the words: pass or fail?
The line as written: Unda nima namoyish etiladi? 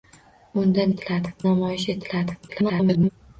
fail